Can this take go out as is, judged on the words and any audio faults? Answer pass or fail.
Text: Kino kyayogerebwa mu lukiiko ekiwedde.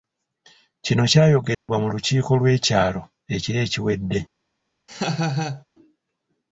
fail